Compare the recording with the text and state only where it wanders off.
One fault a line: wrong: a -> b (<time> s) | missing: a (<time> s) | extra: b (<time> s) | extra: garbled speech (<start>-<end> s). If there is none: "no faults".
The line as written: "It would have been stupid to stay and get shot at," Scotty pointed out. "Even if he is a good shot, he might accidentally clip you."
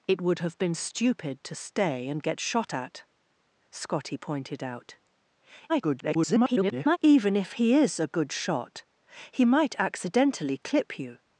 extra: garbled speech (5.7-7.0 s)